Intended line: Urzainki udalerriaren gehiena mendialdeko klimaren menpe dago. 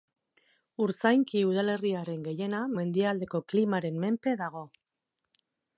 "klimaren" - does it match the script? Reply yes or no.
yes